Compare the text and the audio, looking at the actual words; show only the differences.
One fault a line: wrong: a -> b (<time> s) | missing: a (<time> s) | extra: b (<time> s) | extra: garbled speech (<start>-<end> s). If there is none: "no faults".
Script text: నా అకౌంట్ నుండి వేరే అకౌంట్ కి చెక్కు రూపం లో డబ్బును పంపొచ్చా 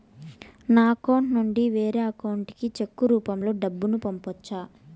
no faults